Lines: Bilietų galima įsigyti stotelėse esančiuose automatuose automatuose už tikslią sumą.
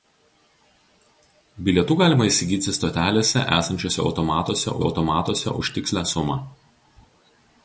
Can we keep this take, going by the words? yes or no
yes